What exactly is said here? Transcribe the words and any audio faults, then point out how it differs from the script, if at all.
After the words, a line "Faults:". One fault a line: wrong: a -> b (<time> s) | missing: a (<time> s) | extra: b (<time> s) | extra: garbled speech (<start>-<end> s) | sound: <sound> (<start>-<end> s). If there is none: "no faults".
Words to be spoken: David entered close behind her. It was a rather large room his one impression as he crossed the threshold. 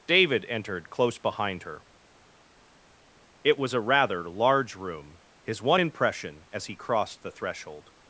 David entered close behind her. It was a rather large room his one impression as he crossed the threshold.
Faults:
no faults